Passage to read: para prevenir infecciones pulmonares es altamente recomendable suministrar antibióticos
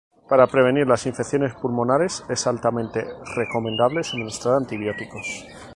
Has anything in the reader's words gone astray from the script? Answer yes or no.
yes